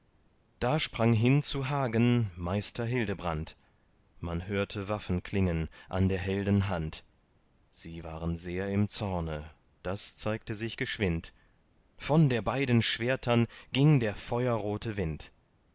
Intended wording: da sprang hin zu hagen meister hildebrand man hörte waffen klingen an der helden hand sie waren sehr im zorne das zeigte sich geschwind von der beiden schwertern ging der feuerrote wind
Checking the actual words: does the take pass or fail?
pass